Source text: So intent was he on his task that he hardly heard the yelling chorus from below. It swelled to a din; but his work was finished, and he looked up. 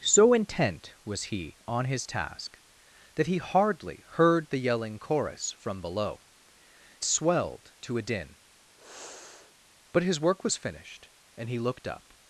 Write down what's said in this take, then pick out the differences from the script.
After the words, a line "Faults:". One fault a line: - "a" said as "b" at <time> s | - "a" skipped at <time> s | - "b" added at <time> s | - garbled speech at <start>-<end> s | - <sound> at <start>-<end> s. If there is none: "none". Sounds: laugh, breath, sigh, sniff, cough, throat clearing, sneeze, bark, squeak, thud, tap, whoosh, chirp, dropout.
So intent was he on his task that he hardly heard the yelling chorus from below. Swelled to a din; but his work was finished, and he looked up.
Faults:
- "It" skipped at 6.2 s
- sigh at 8.8-9.5 s